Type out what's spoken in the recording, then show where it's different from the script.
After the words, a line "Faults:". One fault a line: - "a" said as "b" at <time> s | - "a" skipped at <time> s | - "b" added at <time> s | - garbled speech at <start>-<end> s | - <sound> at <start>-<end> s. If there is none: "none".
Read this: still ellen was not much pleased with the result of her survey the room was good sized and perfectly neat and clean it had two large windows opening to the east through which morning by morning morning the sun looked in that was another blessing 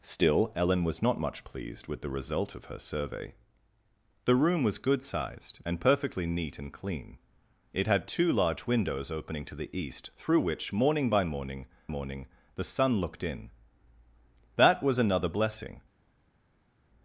still ellen was not much pleased with the result of her survey the room was good sized and perfectly neat and clean it had two large windows opening to the east through which morning by morning morning the sun looked in that was another blessing
Faults:
none